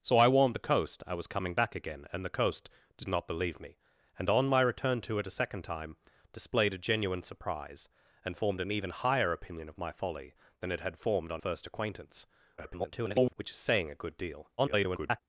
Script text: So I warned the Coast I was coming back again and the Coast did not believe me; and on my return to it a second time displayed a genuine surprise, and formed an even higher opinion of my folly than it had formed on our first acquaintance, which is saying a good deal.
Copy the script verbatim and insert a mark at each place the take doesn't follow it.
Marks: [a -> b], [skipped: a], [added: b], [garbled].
So I warned the Coast I was coming back again and the Coast did not believe me; and on my return to it a second time displayed a genuine surprise, and formed an even higher opinion of my folly than it had formed on [skipped: our] first acquaintance, [garbled] which is saying a good deal. [garbled]